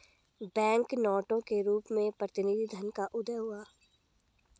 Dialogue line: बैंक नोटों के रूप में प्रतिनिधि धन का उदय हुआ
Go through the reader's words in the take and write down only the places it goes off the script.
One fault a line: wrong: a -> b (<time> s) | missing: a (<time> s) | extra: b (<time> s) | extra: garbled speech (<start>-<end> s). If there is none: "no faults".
no faults